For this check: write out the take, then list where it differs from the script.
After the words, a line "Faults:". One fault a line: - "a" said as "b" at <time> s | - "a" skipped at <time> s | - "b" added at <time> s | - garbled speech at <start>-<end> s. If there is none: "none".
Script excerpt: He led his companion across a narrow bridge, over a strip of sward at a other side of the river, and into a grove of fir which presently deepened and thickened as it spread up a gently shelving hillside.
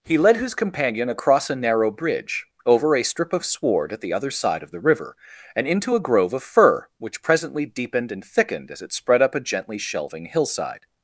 He led his companion across a narrow bridge, over a strip of sward at the other side of the river, and into a grove of fir which presently deepened and thickened as it spread up a gently shelving hillside.
Faults:
- "a" said as "the" at 4.0 s